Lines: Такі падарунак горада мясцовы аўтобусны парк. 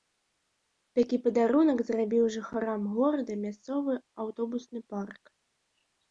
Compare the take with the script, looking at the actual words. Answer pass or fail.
fail